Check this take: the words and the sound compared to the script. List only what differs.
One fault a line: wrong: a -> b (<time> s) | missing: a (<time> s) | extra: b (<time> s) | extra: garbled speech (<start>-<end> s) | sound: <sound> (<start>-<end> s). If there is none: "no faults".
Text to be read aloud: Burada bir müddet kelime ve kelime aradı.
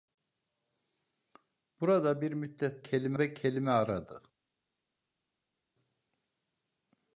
no faults